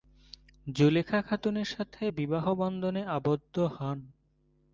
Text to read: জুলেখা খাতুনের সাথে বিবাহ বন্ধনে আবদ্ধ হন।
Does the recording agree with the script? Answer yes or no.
yes